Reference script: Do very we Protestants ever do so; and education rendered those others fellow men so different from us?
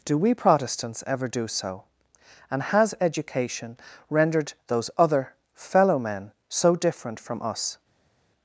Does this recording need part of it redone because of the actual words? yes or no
yes